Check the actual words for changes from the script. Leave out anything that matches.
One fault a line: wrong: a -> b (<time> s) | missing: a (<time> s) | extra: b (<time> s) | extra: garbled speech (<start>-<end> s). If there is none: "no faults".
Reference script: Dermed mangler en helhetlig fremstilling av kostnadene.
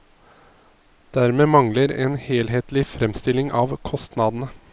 no faults